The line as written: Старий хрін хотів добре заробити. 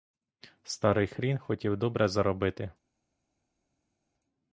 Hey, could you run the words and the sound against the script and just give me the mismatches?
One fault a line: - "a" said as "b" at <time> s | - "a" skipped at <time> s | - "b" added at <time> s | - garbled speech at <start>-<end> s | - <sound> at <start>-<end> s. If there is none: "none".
none